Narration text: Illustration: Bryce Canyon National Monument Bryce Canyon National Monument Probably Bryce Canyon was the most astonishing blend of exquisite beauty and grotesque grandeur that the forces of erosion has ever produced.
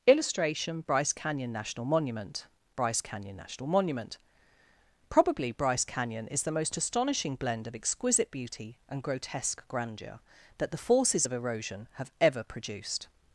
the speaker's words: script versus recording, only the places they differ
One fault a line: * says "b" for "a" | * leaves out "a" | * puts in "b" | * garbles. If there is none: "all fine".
* says "is" for "was"
* says "have" for "has"